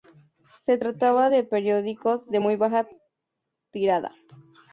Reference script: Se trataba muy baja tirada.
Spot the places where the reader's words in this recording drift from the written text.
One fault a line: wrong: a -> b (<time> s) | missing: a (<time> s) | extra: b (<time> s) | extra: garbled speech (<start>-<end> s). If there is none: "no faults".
extra: de periódicos de (1.3 s)